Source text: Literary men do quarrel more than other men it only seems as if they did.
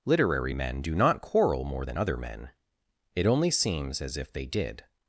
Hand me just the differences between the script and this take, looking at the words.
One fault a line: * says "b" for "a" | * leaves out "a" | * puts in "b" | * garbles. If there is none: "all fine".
* puts in "not"